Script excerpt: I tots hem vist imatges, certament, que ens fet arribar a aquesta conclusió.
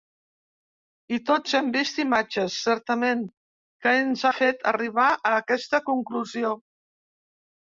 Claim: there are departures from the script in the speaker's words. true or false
false